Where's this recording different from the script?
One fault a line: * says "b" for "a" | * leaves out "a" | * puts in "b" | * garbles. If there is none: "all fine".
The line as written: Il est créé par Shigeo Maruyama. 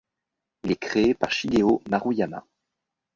all fine